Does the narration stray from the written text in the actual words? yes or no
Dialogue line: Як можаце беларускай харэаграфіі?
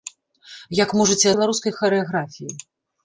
no